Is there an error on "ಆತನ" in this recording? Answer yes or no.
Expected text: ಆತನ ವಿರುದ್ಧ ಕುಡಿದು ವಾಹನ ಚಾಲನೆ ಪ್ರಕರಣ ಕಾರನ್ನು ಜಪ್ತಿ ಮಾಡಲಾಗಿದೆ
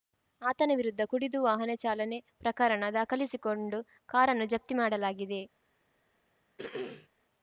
no